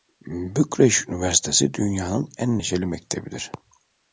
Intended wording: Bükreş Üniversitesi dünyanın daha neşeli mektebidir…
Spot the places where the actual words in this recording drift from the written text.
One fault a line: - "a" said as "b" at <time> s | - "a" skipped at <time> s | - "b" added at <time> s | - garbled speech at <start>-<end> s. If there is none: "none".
- "daha" said as "en" at 2.4 s